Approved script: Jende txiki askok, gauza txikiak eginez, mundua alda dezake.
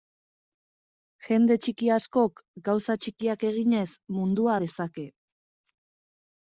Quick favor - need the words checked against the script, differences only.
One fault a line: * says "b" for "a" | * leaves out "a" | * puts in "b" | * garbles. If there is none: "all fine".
* leaves out "alda"